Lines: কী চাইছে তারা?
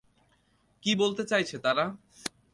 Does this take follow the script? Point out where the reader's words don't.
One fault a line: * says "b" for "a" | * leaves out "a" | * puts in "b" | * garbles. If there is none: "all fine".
* puts in "বলতে"